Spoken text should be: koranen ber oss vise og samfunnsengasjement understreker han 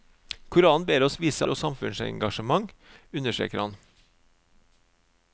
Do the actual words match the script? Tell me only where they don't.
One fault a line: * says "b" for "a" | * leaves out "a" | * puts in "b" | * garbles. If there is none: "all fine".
all fine